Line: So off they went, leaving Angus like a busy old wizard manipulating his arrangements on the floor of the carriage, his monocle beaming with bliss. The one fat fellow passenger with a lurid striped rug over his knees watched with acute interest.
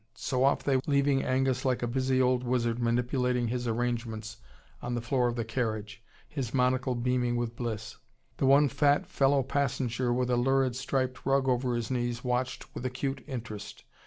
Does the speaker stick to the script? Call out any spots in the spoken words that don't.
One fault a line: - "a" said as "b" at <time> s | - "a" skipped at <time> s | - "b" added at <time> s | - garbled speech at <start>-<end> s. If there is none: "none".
- "went" skipped at 0.8 s